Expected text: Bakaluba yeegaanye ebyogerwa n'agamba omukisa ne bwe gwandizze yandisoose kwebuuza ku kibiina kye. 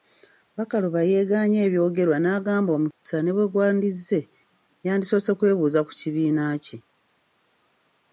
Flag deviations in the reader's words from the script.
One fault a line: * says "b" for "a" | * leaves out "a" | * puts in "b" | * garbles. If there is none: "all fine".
all fine